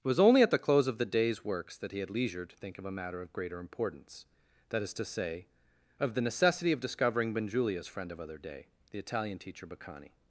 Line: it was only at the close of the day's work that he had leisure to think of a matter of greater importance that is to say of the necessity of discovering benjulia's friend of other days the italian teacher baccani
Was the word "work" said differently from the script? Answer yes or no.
yes